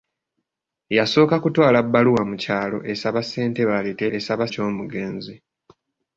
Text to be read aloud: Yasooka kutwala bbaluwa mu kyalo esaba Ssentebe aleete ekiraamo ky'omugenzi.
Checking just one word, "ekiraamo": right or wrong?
wrong